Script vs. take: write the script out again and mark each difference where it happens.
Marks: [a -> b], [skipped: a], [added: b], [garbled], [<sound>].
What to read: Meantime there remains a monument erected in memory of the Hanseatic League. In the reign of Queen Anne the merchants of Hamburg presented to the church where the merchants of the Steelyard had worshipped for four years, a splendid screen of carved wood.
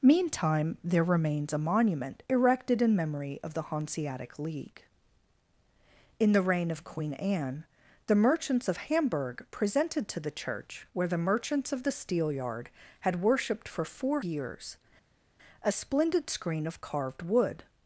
Meantime there remains a monument erected in memory of the Hanseatic League. In the reign of Queen Anne the merchants of Hamburg presented to the church where the merchants of the Steelyard had worshipped for four years, a splendid screen of carved wood.